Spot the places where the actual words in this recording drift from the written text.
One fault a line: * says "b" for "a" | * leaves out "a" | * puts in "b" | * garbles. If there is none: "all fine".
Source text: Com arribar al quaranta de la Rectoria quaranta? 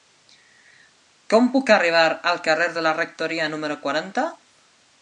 * puts in "puc"
* says "carrer" for "quaranta"
* puts in "número"